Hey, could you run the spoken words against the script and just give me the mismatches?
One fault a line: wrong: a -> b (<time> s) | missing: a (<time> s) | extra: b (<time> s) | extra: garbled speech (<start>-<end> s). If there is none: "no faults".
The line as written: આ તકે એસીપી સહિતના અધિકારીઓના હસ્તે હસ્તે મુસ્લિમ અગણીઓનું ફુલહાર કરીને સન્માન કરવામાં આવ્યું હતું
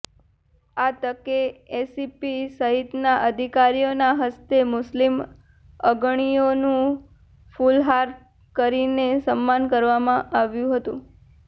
missing: હસ્તે (4.6 s)